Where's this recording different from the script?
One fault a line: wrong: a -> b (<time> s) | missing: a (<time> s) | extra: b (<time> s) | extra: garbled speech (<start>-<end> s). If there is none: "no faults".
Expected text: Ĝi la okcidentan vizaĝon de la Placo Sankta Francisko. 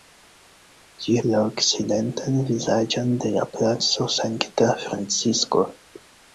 no faults